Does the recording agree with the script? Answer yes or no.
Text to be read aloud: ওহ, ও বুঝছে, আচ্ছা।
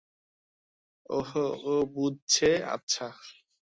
yes